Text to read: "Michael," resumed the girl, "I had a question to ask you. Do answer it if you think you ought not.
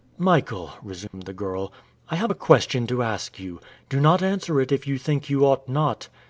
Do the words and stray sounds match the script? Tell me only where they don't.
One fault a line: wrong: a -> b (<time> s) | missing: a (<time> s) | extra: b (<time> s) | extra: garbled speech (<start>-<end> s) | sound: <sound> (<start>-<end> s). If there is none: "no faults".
sound: dropout (1.1-1.1 s)
wrong: had -> have (2.1 s)
extra: not (4.0 s)